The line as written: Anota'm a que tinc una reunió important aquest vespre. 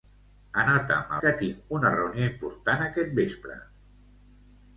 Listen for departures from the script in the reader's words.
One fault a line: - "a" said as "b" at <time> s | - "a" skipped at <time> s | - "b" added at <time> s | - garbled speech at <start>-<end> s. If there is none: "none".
none